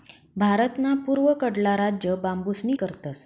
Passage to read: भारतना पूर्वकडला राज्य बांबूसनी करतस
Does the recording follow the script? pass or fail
pass